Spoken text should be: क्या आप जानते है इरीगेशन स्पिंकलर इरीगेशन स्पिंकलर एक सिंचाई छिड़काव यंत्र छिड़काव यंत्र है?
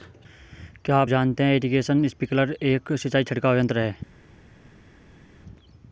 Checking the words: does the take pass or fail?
fail